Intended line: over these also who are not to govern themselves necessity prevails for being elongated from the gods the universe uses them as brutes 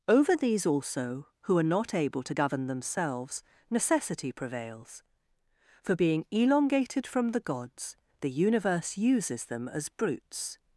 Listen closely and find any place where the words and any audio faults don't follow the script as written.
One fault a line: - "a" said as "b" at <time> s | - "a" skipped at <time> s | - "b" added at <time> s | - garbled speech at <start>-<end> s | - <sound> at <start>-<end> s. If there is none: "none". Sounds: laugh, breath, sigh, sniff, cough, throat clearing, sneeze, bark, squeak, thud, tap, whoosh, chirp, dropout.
- "able" added at 1.9 s